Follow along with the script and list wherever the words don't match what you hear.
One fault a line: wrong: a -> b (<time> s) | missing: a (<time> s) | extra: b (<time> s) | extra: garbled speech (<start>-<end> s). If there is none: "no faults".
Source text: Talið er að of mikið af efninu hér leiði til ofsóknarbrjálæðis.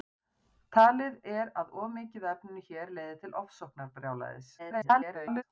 extra: garbled speech (4.6-5.4 s)